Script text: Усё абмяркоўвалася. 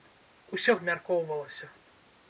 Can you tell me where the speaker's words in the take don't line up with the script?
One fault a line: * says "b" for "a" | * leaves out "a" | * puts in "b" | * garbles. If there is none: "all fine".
all fine